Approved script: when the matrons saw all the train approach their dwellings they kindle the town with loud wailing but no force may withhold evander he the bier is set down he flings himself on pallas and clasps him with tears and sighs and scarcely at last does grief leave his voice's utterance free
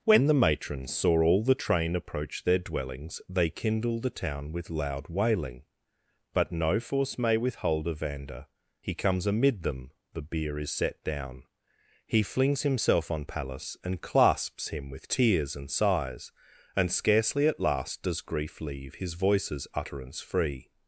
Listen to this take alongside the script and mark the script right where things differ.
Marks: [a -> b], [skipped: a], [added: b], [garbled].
when the matrons saw all the train approach their dwellings they kindle the town with loud wailing but no force may withhold evander he [added: comes amid them] the bier is set down he flings himself on pallas and clasps him with tears and sighs and scarcely at last does grief leave his voice's utterance free